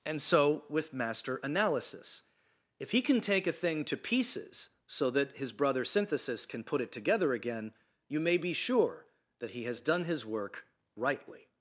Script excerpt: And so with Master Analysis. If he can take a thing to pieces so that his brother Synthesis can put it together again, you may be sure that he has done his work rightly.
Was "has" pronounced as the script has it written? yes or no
yes